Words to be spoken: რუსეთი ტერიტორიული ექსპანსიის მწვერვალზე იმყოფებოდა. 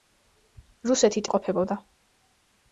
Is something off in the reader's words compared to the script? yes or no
yes